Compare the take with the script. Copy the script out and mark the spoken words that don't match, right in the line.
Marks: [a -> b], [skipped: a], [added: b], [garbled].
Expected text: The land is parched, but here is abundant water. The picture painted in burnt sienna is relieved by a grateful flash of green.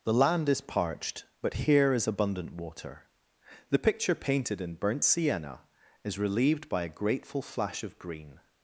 The land is parched, but here is abundant water. The picture painted in burnt sienna is relieved by a grateful flash of green.